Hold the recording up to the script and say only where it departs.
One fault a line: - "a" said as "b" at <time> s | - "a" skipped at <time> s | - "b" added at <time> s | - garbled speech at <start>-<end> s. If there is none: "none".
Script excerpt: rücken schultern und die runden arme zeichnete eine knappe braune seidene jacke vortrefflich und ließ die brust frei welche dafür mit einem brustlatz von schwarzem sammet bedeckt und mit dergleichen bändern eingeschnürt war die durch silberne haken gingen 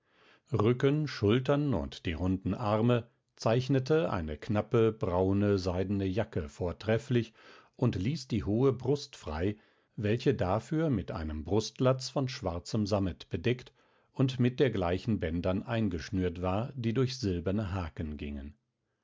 - "hohe" added at 8.4 s